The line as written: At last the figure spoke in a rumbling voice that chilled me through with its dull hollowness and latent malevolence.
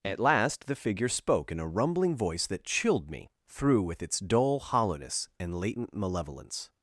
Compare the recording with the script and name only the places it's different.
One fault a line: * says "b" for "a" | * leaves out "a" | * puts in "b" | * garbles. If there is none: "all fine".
all fine